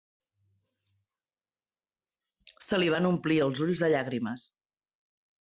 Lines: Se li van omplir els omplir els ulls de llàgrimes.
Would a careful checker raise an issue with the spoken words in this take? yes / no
yes